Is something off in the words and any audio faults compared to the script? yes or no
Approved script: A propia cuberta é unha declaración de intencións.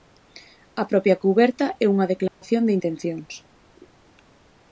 yes